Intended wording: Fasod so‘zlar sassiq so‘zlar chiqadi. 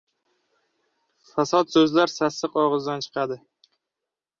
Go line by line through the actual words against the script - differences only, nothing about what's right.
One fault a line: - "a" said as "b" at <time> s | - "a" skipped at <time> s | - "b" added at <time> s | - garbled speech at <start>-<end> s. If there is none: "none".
- "so‘zlar" said as "og‘izdan" at 2.6 s